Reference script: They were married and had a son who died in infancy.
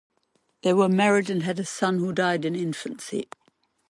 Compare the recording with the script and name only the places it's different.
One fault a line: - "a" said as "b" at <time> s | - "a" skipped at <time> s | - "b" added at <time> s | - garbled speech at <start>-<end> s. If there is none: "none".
none